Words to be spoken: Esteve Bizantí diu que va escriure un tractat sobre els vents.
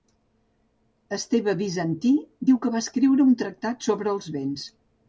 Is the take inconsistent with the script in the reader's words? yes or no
no